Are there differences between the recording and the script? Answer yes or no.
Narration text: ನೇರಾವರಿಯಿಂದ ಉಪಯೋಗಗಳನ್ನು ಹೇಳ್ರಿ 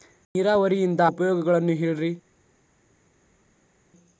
no